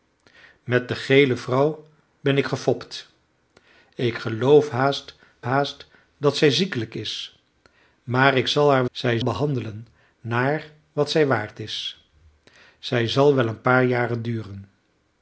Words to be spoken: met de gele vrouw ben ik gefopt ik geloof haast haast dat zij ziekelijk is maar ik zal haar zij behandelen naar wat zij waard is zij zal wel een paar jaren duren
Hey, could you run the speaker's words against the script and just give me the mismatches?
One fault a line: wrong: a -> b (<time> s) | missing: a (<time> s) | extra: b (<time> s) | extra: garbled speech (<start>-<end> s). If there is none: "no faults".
no faults